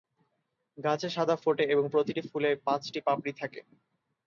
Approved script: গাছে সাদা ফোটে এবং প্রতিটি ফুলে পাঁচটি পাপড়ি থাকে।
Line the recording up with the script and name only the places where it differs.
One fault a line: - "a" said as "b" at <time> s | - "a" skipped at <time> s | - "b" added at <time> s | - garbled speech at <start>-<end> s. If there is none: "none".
none